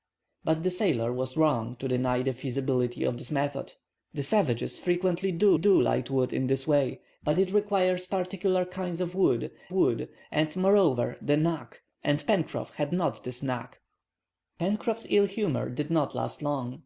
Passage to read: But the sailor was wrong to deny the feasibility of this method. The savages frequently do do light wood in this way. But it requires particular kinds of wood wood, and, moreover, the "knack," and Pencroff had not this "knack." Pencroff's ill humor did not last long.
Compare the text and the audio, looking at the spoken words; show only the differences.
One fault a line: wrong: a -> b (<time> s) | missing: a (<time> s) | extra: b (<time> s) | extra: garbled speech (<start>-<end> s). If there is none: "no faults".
no faults